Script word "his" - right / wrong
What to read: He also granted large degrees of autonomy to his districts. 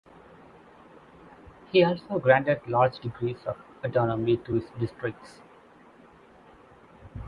right